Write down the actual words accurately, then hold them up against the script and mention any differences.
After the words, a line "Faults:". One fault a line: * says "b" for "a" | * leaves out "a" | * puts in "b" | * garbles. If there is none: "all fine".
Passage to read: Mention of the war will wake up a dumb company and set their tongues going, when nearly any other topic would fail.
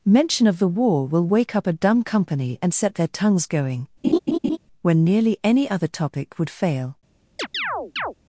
Mention of the war will wake up a dumb company and set their tongues going, when nearly any other topic would fail.
Faults:
all fine